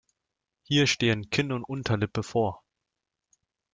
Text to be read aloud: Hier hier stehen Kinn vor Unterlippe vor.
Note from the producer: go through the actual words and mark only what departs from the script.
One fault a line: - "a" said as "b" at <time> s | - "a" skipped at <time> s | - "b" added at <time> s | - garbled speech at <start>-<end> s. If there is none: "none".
- "hier" skipped at 0.9 s
- "vor" said as "und" at 1.5 s